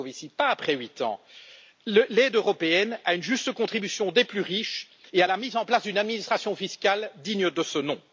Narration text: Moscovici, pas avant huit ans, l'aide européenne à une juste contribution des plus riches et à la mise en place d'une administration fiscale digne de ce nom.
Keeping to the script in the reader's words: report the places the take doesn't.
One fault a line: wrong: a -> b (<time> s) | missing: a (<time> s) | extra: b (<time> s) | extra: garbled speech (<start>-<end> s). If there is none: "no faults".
wrong: avant -> après (0.5 s)